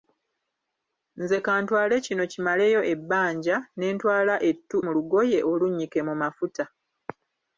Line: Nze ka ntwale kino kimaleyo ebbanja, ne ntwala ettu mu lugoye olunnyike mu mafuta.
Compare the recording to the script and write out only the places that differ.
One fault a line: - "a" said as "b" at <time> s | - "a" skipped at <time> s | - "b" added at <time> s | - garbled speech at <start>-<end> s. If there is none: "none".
none